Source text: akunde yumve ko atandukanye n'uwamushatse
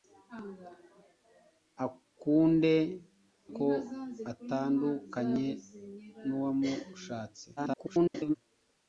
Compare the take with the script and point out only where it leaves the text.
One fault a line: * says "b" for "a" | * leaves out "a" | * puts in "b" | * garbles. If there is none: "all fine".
* leaves out "yumve"
* garbles